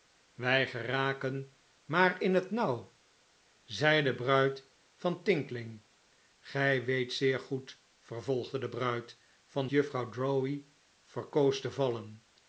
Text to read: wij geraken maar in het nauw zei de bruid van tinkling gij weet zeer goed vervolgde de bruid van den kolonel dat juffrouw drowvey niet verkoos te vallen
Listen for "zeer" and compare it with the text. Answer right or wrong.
right